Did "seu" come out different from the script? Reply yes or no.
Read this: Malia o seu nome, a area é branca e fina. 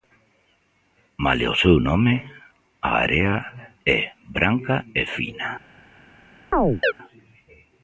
no